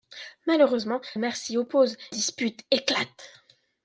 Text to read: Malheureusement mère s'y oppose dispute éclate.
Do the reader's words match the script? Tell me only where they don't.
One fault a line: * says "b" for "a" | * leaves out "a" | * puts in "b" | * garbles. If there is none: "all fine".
all fine